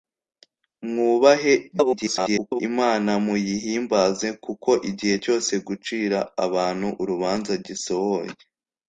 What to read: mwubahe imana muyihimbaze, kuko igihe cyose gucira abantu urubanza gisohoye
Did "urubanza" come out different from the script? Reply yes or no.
no